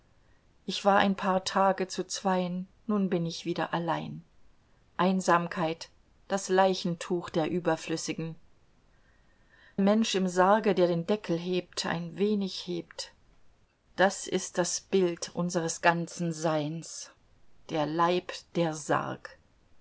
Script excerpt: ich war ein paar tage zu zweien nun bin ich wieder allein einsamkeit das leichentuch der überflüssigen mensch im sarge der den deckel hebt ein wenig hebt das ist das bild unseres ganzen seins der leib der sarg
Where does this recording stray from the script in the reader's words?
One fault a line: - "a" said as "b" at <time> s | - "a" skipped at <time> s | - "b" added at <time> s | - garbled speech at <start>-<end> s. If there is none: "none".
none